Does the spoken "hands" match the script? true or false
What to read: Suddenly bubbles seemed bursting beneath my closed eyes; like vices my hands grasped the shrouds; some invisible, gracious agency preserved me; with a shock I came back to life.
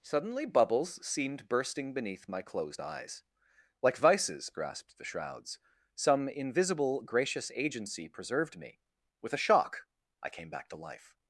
false